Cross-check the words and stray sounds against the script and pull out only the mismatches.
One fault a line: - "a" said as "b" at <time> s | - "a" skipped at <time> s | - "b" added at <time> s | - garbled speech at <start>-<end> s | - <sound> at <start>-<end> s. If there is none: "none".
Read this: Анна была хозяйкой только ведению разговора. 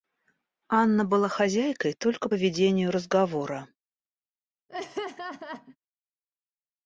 - laugh at 4.7-5.8 s